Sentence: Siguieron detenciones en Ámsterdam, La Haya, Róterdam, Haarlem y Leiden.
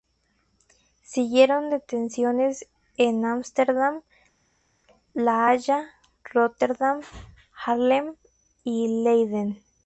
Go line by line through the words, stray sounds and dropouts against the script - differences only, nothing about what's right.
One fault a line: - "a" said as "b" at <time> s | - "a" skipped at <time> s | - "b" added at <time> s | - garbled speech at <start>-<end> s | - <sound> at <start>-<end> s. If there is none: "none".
none